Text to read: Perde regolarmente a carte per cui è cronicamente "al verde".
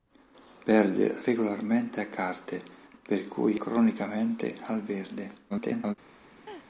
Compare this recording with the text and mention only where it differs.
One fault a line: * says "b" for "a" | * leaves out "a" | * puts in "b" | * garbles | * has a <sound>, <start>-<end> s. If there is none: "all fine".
* leaves out "è"
* garbles
* has a laugh, 6.5-6.7 s